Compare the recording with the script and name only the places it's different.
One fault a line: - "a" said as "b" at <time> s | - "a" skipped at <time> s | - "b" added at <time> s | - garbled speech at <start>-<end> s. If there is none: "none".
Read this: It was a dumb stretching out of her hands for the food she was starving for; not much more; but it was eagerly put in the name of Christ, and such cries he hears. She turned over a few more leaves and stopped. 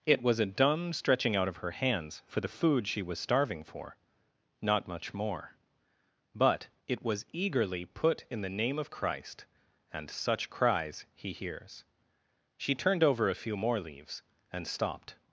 none